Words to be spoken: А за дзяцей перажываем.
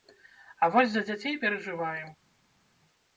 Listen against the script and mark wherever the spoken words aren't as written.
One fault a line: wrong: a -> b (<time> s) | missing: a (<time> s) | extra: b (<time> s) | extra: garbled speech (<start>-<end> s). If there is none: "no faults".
extra: вось (0.8 s)